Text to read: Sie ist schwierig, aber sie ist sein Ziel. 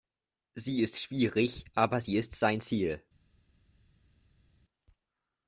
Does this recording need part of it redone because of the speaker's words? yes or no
no